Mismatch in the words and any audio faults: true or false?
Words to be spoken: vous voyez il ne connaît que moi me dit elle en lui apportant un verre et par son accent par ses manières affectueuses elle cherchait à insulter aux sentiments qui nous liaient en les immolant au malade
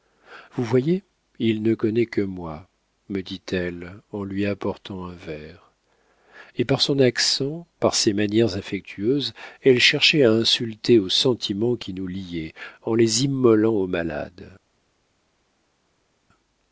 false